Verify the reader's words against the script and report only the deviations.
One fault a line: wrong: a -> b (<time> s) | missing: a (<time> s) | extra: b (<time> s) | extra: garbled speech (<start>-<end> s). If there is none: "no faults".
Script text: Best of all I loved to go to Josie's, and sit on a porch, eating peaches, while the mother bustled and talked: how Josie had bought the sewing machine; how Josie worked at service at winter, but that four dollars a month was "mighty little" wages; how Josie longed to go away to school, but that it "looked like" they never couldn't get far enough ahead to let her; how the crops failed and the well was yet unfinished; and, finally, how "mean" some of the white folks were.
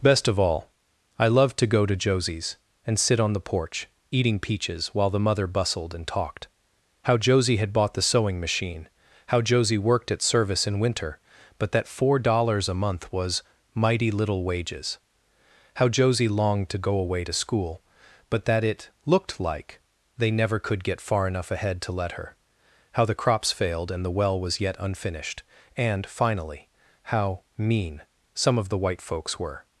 wrong: a -> the (3.3 s)
wrong: at -> in (10.7 s)
wrong: couldn't -> could (20.6 s)